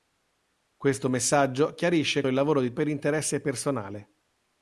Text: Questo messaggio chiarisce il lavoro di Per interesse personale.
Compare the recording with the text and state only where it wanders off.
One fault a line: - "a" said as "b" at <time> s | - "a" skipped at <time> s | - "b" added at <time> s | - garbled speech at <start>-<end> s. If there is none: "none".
none